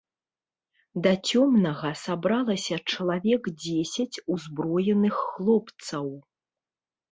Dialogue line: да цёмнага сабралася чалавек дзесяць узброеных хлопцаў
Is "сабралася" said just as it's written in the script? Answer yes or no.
yes